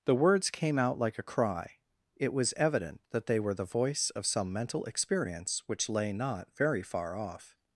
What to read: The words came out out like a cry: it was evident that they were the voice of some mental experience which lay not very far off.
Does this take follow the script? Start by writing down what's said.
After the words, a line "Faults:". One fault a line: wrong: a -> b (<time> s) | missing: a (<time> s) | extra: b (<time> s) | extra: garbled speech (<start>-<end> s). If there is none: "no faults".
The words came out like a cry: it was evident that they were the voice of some mental experience which lay not very far off.
Faults:
missing: out (1.0 s)